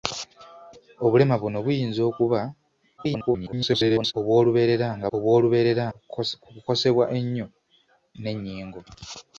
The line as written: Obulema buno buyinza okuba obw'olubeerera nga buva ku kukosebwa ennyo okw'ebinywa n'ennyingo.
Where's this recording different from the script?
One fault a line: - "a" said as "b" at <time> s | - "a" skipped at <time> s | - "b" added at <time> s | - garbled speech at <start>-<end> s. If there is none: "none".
- garbled speech at 3.0-4.1 s
- "buva" said as "obw'olubeerera" at 5.1 s
- "okw'ebinywa" skipped at 7.5 s